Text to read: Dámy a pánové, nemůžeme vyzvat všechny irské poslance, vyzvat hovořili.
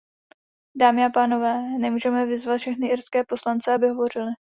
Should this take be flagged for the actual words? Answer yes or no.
yes